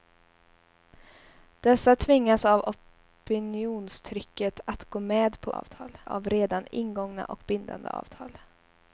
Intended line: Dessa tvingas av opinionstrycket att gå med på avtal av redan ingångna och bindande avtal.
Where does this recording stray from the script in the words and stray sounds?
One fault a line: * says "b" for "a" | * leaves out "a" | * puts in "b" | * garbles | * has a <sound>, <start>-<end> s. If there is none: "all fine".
all fine